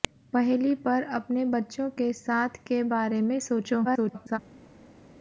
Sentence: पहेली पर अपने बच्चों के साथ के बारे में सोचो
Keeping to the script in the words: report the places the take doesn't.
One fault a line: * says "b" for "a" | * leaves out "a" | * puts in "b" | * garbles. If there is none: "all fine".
* garbles